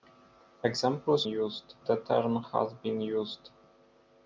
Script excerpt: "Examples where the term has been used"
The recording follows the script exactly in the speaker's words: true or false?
false